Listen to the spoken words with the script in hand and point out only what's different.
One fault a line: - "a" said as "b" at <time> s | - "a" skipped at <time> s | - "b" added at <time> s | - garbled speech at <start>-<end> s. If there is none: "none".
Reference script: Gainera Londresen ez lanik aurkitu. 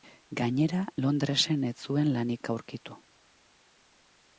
- "zuen" added at 1.8 s